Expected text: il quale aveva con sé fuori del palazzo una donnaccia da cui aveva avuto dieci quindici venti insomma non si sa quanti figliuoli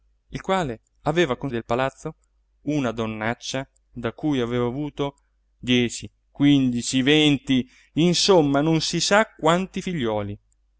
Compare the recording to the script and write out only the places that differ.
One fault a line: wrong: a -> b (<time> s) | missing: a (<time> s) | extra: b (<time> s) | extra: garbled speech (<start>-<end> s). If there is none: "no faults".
missing: sé fuori (1.5 s)